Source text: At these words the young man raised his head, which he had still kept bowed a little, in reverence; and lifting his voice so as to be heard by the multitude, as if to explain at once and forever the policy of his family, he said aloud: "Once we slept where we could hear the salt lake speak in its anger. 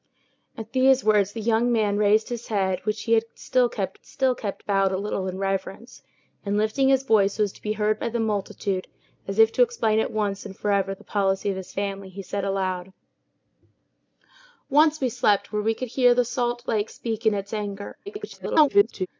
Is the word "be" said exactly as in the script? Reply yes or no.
yes